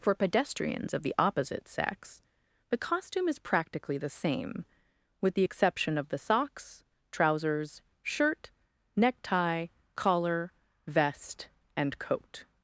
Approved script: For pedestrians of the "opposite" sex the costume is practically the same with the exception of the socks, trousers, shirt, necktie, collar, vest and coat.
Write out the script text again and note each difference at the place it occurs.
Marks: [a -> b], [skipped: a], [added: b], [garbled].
For pedestrians of the "opposite" sex the costume is practically the same with the exception of the socks, trousers, shirt, necktie, collar, vest and coat.